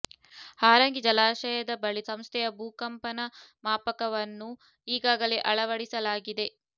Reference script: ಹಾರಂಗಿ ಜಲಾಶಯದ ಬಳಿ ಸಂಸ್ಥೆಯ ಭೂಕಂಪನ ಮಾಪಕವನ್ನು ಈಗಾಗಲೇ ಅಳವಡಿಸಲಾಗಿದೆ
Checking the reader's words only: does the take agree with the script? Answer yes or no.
yes